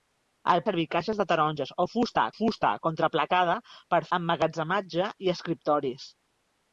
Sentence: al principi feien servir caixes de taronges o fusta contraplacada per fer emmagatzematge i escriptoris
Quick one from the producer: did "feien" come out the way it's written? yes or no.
no